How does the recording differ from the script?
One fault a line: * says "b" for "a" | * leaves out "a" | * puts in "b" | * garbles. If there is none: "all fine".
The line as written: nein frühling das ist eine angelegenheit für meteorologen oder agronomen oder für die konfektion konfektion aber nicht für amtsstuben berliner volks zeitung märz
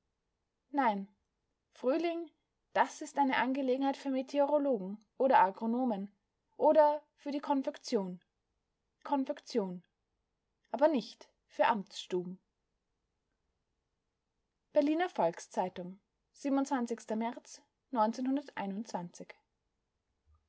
all fine